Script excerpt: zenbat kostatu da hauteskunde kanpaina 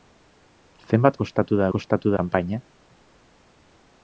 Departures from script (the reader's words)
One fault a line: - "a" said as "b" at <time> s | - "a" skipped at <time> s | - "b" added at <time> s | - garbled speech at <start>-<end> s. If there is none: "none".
- "hauteskunde" said as "kostatu" at 1.7 s